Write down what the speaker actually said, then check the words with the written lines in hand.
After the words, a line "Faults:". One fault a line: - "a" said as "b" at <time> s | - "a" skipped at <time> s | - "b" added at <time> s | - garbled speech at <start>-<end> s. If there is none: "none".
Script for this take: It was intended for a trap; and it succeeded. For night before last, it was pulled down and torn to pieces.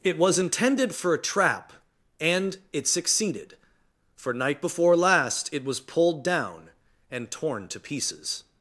It was intended for a trap; and it succeeded. For night before last, it was pulled down and torn to pieces.
Faults:
none